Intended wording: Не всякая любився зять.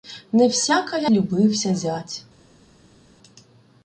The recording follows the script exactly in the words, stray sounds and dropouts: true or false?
true